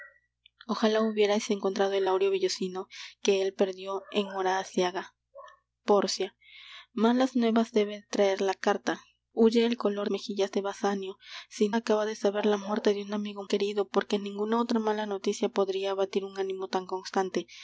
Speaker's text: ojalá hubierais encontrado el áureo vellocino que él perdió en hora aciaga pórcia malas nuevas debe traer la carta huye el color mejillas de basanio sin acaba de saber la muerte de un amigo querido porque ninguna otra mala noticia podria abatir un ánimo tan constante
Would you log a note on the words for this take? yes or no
no